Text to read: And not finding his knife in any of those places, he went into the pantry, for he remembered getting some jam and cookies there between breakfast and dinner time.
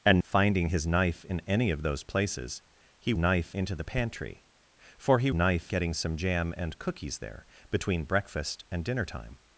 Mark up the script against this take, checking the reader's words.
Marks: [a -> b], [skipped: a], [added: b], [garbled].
And [skipped: not] finding his knife in any of those places, he [went -> knife] into the pantry, for he [remembered -> knife] getting some jam and cookies there between breakfast and dinner time.